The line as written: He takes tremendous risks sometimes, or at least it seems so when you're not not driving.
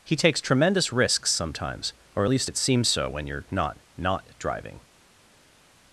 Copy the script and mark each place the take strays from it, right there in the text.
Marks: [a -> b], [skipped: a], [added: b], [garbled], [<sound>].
He takes tremendous risks sometimes, or at least it seems so when you're not not driving.